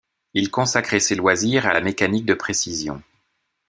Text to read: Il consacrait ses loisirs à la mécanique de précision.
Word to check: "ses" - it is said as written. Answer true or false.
true